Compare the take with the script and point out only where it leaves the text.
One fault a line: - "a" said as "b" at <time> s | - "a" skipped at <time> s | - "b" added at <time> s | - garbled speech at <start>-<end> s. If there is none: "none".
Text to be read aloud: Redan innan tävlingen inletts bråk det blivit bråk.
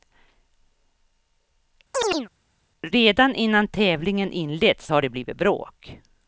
- "bråk" said as "har" at 4.9 s